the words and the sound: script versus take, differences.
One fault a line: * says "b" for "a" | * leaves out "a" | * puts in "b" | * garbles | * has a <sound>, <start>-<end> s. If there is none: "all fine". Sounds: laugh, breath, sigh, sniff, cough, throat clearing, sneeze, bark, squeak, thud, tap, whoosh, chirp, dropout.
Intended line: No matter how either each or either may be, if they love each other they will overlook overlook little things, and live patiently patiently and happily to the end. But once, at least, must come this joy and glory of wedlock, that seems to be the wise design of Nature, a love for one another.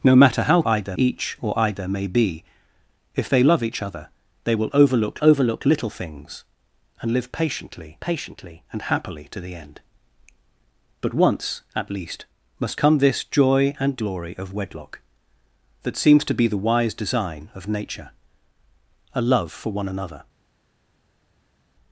all fine